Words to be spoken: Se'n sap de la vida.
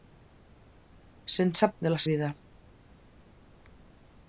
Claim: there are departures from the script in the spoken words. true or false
false